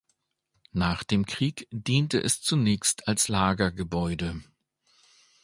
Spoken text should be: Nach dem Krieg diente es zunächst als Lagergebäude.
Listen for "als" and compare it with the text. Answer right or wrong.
right